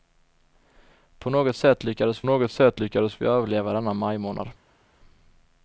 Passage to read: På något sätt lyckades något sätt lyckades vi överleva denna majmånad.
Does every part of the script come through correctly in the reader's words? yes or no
yes